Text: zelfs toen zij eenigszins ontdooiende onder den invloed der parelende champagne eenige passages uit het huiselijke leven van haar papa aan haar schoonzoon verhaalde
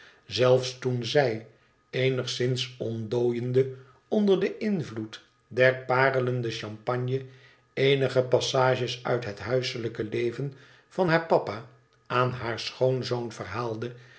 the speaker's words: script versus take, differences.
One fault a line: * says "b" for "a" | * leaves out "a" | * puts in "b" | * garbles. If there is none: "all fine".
all fine